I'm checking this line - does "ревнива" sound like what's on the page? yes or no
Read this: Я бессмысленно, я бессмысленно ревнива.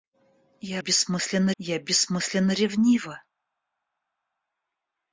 yes